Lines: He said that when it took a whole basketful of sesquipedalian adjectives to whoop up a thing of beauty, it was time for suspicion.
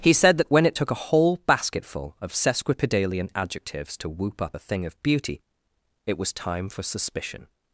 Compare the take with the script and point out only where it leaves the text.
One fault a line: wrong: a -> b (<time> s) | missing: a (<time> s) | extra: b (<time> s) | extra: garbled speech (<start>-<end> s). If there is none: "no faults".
no faults